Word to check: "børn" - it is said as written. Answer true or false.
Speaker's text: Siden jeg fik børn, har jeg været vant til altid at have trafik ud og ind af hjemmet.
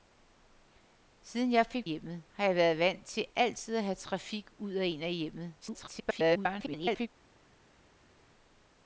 false